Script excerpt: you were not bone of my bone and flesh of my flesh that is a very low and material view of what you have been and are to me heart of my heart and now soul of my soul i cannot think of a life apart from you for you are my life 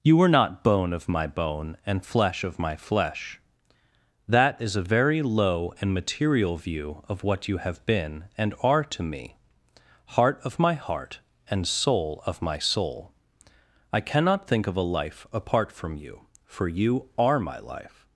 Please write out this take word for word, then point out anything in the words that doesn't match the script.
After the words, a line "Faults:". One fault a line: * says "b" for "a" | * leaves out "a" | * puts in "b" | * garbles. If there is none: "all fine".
you were not bone of my bone and flesh of my flesh that is a very low and material view of what you have been and are to me heart of my heart and soul of my soul i cannot think of a life apart from you for you are my life
Faults:
* leaves out "now"